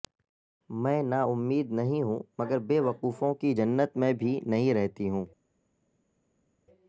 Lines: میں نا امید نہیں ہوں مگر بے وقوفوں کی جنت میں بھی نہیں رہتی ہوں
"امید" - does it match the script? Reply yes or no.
yes